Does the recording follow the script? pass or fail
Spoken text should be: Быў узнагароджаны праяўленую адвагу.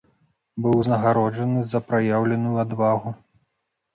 fail